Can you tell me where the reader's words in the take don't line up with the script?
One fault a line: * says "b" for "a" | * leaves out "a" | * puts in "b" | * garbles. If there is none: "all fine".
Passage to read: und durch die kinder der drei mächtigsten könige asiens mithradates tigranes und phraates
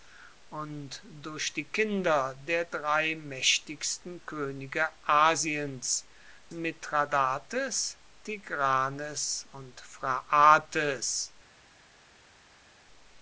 all fine